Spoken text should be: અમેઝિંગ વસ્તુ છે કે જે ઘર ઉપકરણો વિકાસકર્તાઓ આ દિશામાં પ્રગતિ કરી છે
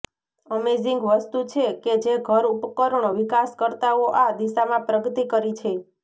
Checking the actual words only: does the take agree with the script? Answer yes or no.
yes